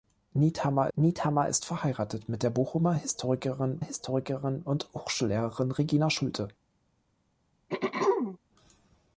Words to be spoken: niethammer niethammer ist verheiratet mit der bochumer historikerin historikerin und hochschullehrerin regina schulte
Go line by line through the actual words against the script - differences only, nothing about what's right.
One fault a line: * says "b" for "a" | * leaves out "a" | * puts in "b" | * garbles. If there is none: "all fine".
all fine